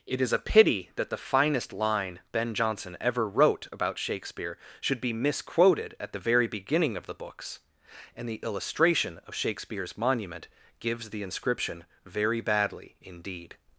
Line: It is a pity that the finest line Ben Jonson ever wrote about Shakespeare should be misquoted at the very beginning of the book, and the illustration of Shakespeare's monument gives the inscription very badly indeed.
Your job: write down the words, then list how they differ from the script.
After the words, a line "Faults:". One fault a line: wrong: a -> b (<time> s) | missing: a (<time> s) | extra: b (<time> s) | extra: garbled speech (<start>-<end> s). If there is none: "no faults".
It is a pity that the finest line Ben Jonson ever wrote about Shakespeare should be misquoted at the very beginning of the books, and the illustration of Shakespeare's monument gives the inscription very badly indeed.
Faults:
wrong: book -> books (7.1 s)